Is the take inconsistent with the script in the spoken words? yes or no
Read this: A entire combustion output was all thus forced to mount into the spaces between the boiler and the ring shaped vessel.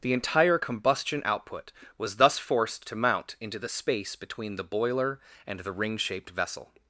yes